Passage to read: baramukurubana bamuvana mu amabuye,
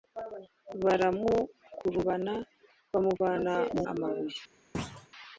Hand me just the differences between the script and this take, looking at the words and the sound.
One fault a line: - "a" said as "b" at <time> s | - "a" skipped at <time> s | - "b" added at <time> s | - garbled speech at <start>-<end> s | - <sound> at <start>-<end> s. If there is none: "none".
- thud at 4.7-5.1 s